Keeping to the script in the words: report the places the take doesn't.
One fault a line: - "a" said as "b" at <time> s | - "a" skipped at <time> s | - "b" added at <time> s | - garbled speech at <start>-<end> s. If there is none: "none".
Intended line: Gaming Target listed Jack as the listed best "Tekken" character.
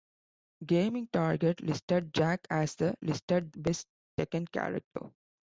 none